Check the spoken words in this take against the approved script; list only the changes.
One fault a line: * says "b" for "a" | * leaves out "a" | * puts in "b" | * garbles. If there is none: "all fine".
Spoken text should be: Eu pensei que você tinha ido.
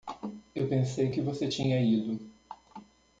all fine